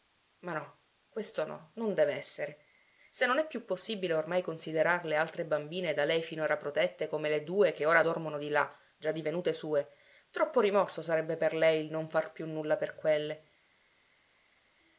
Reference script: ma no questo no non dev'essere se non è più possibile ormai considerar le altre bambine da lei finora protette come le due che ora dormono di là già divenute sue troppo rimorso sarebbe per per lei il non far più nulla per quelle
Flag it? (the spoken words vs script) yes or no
yes